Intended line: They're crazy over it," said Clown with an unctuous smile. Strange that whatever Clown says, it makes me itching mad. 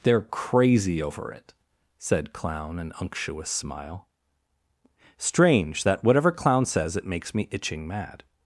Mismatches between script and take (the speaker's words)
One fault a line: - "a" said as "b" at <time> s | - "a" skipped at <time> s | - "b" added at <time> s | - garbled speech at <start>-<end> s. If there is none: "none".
- "with" skipped at 2.8 s